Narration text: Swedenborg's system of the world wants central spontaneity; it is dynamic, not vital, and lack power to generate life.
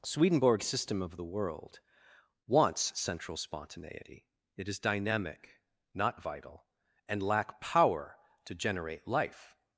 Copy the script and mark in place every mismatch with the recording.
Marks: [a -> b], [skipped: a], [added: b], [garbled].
Swedenborg's system of the world wants central spontaneity; it is dynamic, not vital, and lack power to generate life.